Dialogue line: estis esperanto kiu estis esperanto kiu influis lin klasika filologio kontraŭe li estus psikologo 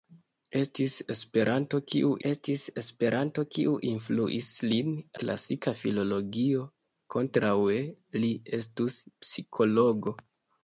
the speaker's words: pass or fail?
pass